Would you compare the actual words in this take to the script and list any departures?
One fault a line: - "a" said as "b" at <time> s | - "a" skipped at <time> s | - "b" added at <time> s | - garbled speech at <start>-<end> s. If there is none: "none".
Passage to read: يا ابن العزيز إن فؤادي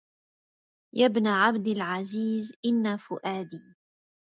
- "عبد" added at 1.3 s